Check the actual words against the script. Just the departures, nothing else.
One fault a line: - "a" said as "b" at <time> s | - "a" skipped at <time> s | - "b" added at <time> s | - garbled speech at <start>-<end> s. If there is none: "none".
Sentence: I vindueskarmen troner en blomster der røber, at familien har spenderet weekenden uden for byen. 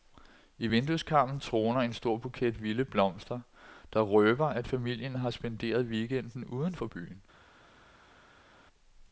- "stor buket vilde" added at 1.9 s